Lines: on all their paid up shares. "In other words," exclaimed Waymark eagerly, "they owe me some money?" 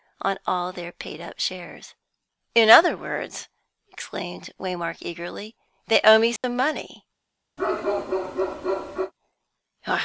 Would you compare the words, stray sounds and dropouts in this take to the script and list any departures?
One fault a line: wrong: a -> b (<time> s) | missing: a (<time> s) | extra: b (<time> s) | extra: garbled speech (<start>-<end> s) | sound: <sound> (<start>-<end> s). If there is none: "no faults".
sound: dropout (6.4-6.4 s)
sound: bark (7.6-9.1 s)